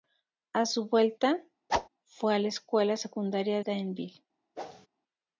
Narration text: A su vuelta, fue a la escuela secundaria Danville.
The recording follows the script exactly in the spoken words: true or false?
true